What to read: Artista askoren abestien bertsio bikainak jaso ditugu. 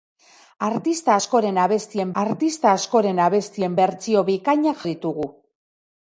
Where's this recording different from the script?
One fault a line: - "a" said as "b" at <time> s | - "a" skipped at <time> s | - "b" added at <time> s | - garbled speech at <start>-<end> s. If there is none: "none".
- "artista askoren abestien" added at 2.2 s
- "jaso" skipped at 4.8 s